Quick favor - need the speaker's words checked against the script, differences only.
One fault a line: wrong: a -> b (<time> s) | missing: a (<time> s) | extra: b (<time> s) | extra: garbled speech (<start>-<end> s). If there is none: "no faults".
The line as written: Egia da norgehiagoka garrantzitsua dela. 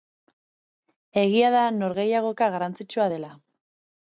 no faults